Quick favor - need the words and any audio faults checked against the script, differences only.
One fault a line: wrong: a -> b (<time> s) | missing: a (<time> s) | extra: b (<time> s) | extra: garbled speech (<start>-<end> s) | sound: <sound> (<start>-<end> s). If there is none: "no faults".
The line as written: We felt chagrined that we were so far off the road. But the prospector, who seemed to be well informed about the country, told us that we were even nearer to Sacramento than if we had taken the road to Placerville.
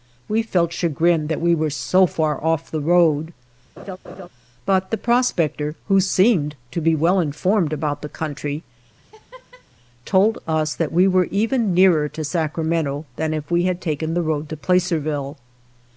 sound: laugh (3.8-4.3 s)
sound: laugh (9.0-9.7 s)